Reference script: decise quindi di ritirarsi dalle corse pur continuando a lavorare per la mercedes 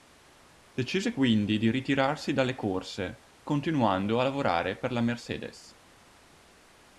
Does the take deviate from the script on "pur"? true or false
true